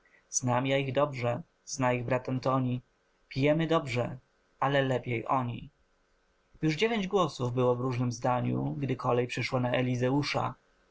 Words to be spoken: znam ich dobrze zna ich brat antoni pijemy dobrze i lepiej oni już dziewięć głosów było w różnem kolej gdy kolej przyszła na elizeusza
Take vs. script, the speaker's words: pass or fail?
fail